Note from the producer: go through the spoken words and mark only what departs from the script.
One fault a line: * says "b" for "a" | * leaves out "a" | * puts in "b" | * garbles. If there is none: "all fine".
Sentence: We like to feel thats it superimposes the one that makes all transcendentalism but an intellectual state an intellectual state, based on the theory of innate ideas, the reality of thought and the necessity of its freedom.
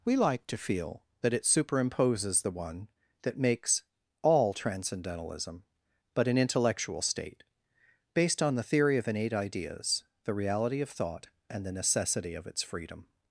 * says "that" for "thats"
* leaves out "an intellectual state"